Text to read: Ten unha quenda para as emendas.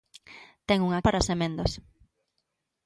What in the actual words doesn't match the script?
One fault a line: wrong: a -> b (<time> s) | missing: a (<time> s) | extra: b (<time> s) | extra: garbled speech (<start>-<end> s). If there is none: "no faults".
missing: quenda (1.0 s)